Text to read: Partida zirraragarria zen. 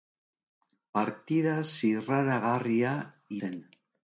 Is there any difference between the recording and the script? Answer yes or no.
no